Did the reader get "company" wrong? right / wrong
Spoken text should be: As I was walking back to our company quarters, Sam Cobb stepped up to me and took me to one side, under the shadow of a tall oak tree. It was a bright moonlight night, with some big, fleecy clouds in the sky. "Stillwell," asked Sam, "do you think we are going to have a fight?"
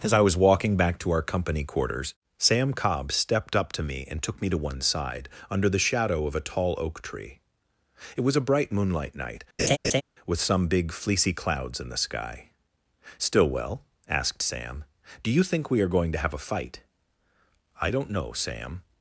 right